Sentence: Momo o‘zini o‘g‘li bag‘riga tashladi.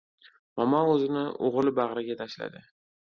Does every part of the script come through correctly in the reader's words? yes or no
yes